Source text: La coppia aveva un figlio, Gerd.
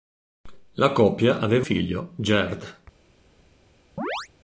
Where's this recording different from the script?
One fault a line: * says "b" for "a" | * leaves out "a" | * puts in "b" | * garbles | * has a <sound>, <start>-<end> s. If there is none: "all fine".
* leaves out "un"
* has a chirp, 4.0-4.3 s